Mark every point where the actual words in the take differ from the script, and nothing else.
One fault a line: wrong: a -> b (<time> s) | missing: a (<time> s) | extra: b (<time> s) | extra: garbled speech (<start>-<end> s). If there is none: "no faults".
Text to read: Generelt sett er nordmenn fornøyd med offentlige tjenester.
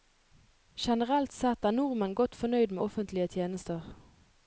extra: godt (2.2 s)